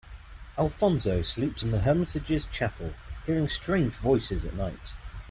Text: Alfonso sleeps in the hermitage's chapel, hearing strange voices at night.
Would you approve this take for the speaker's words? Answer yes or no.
yes